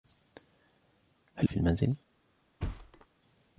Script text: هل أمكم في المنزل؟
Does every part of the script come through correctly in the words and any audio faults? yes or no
no